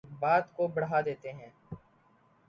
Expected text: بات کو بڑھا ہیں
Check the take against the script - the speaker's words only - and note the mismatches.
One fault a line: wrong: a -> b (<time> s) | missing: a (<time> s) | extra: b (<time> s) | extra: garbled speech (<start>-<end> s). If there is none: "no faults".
extra: دیتے (1.0 s)